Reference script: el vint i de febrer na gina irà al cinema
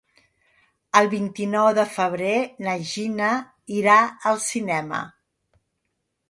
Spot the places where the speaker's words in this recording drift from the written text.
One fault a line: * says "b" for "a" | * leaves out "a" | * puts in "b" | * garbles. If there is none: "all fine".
* puts in "nou"